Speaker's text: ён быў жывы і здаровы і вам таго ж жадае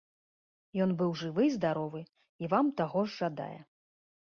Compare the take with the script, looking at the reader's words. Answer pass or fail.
pass